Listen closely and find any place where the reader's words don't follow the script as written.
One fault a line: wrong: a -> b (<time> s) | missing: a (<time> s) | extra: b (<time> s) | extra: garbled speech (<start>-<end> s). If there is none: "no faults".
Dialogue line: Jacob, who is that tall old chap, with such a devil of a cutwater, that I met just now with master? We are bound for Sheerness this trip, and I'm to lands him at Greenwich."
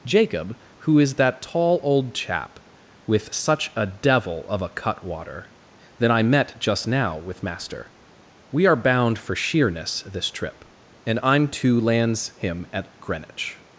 no faults